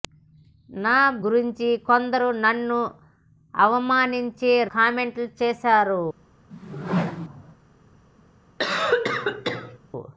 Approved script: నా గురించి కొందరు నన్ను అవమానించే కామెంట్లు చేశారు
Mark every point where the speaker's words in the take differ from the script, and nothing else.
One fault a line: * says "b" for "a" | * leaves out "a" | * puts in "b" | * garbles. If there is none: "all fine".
all fine